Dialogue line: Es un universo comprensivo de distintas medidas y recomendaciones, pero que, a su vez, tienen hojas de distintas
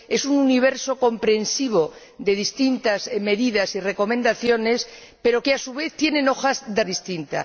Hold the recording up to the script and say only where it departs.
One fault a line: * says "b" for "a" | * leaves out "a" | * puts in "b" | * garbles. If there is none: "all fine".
all fine